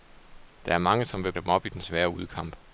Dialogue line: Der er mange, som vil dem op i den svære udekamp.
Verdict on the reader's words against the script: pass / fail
pass